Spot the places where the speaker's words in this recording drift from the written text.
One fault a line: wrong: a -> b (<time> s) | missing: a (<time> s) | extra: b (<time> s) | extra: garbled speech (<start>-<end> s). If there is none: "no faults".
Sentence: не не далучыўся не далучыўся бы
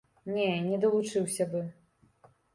missing: не далучыўся (1.5 s)